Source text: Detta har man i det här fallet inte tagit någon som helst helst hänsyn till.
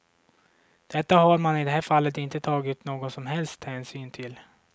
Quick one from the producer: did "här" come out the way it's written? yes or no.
yes